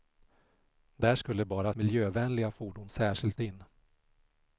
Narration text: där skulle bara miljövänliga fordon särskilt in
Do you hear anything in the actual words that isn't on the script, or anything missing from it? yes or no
no